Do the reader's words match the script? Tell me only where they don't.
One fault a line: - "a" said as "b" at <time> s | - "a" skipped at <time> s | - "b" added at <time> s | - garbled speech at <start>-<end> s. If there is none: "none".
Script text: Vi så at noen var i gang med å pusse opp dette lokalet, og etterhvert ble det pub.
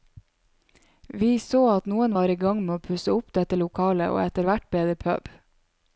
none